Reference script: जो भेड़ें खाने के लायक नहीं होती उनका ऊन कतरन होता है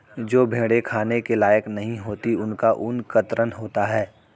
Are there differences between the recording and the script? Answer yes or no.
no